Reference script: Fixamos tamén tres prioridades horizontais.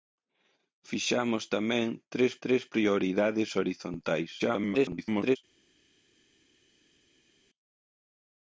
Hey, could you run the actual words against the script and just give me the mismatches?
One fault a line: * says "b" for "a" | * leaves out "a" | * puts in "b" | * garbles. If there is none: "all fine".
* puts in "tres"
* garbles